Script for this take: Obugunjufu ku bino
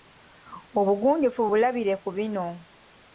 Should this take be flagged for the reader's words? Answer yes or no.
yes